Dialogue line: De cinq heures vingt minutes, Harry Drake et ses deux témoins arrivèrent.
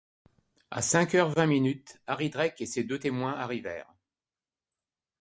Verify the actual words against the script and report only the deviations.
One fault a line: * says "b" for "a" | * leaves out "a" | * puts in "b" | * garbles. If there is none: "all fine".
* says "À" for "De"